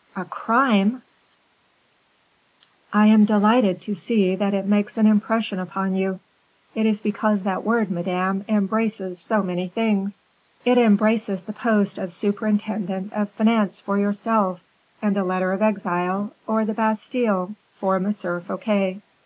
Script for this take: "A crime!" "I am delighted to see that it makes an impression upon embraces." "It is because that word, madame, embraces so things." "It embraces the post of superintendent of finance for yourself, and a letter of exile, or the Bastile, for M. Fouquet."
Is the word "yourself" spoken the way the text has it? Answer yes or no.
yes